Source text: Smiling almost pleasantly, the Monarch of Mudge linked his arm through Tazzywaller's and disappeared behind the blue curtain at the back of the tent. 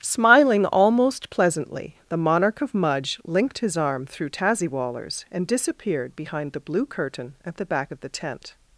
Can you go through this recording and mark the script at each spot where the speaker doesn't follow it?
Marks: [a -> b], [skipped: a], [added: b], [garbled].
Smiling almost pleasantly, the Monarch of Mudge linked his arm through Tazzywaller's and disappeared behind the blue curtain at the back of the tent.